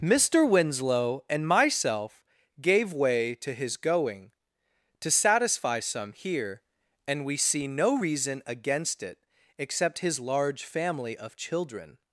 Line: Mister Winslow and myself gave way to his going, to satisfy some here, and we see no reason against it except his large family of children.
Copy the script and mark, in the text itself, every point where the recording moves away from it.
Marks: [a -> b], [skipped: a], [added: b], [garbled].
Mister Winslow and myself gave way to his going, to satisfy some here, and we see no reason against it except his large family of children.